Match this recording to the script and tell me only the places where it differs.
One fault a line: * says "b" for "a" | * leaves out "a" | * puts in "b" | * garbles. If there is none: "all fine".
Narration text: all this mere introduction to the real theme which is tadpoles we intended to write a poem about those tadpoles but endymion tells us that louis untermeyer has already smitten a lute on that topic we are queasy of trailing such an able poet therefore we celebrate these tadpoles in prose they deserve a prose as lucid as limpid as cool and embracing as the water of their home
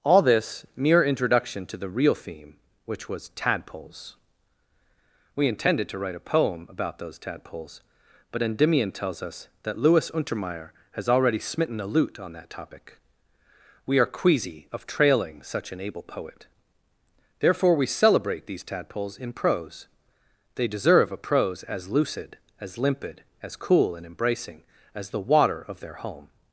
* says "was" for "is"